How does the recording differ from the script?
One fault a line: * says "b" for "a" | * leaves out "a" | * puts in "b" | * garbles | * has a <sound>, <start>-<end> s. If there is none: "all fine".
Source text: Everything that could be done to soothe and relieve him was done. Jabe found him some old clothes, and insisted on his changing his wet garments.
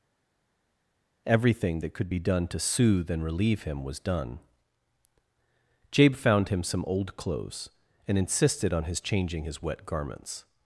all fine